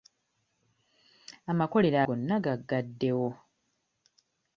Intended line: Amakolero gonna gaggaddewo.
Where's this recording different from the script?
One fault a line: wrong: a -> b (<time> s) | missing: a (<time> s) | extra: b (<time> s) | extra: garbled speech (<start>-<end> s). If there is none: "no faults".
no faults